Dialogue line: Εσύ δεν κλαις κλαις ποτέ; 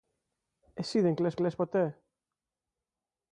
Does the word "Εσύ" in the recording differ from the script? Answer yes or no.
no